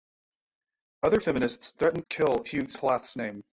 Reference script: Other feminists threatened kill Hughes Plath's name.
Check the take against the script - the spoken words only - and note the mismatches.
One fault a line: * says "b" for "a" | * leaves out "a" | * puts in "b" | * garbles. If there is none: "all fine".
all fine